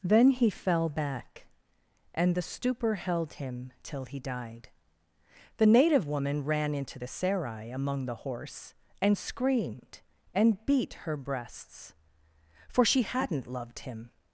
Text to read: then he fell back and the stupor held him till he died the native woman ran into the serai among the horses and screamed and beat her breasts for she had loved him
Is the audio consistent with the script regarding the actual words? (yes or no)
no